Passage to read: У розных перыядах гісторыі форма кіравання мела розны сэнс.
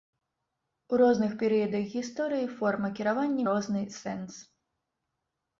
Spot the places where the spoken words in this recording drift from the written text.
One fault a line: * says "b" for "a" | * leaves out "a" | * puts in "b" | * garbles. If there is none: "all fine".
* leaves out "мела"